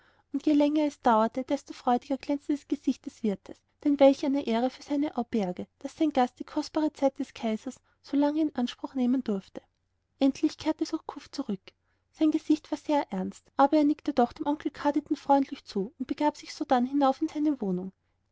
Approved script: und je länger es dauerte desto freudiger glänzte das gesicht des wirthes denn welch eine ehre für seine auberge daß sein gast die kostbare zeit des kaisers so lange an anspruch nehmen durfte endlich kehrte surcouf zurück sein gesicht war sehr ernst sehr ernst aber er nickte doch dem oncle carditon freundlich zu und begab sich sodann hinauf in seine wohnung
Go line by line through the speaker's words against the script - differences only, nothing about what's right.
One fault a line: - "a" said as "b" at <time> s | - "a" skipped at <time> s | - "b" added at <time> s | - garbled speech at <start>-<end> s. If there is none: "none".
- "an" said as "in" at 8.4 s
- "sehr ernst" skipped at 13.5 s